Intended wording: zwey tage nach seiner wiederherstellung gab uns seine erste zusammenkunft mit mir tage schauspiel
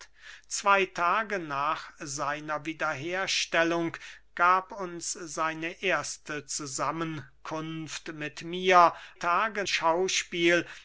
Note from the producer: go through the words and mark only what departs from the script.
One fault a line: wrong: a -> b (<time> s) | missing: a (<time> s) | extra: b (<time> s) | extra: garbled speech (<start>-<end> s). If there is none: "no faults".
no faults